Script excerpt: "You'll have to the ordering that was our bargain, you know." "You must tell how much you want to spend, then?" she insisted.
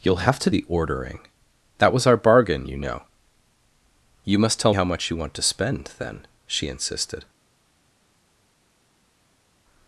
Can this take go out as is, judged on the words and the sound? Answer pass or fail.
pass